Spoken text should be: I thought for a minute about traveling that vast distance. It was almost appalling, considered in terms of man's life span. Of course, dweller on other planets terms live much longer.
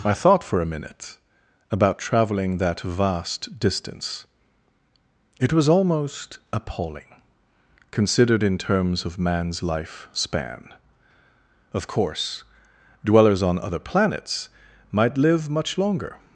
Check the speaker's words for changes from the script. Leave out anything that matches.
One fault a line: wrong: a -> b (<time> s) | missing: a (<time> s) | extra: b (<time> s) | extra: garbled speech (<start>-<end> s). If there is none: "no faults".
wrong: dweller -> dwellers (13.1 s)
wrong: terms -> might (14.9 s)